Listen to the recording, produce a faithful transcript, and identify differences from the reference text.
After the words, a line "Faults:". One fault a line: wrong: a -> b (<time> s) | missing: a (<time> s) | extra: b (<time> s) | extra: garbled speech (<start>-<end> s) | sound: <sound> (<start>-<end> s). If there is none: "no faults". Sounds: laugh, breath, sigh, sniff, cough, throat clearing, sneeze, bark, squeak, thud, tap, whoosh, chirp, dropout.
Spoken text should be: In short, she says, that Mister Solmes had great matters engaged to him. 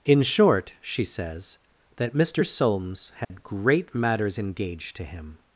In short, she says, that Mister Solmes had great matters engaged to him.
Faults:
sound: dropout (3.2-3.3 s)